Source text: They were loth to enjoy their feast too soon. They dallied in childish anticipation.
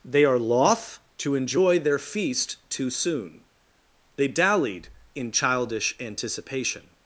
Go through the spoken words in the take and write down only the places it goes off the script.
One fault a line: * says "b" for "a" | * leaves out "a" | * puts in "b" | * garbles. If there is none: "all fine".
* says "are" for "were"